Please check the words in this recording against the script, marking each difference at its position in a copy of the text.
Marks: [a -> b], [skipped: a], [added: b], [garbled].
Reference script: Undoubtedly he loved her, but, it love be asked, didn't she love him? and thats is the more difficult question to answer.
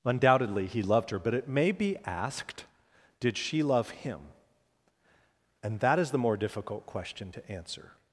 Undoubtedly he loved her, but, it [love -> may] be asked, [didn't -> did] she love him? and [thats -> that] is the more difficult question to answer.